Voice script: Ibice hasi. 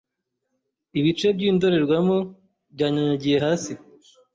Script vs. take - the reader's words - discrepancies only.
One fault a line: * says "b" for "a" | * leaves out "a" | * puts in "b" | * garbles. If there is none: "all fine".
* puts in "by'indorerwamo byanyanyagiye"